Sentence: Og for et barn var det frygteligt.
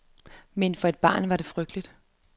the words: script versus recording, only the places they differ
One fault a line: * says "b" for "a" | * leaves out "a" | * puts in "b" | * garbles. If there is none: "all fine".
* says "Men" for "Og"